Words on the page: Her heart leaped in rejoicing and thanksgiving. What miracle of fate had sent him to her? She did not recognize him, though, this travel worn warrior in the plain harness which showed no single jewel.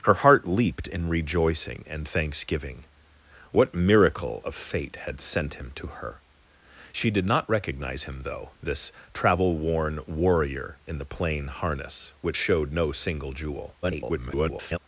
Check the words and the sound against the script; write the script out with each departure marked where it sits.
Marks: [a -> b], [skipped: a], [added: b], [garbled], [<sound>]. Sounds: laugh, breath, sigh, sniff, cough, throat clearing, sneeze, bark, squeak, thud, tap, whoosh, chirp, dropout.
Her heart leaped in rejoicing and thanksgiving. What miracle of fate had sent him to her? She did not recognize him, though, this travel worn warrior in the plain harness which showed no single jewel. [garbled]